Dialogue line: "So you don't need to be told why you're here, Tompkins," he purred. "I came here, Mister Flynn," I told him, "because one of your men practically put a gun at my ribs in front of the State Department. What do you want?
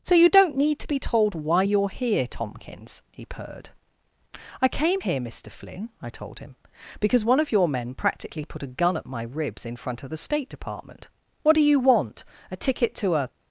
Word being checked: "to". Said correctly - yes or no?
yes